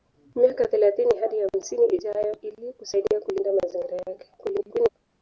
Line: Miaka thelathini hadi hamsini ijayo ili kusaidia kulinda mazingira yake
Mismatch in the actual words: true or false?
true